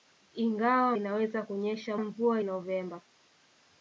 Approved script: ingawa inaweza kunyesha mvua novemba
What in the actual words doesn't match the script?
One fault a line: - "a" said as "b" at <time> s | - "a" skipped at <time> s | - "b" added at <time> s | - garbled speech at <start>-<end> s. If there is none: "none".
none